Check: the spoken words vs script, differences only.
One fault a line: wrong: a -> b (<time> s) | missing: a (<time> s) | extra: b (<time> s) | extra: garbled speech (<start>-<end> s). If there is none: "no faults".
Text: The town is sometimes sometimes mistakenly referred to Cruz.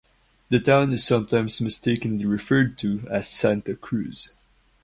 missing: sometimes (1.6 s)
extra: as Santa (3.1 s)